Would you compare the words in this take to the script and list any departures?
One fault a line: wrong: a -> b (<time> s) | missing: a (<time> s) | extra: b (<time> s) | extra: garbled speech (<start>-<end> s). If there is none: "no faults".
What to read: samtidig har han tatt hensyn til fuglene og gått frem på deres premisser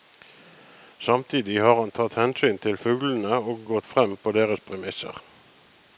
no faults